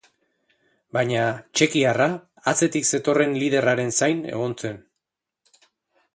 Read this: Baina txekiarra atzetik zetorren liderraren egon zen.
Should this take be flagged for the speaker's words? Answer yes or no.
yes